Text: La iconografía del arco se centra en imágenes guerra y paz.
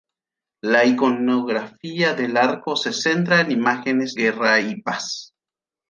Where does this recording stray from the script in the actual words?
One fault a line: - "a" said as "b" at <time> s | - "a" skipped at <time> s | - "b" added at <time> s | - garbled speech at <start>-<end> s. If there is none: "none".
none